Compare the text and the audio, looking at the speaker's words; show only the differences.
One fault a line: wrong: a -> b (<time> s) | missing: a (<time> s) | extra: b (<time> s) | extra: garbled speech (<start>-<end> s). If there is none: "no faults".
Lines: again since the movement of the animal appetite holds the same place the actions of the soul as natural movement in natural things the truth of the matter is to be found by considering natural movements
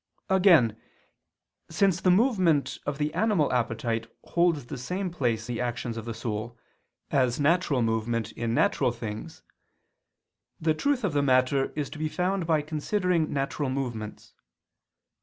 no faults